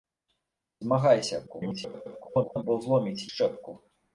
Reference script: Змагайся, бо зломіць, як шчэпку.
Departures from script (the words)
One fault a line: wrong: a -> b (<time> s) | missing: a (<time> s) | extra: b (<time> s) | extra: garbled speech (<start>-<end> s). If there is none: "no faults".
extra: garbled speech (1.5-2.6 s)
missing: як (3.3 s)